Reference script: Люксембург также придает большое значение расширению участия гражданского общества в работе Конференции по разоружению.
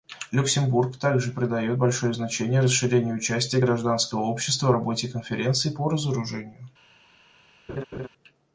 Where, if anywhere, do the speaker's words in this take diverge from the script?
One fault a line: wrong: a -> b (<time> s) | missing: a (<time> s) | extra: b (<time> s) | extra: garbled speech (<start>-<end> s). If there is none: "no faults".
no faults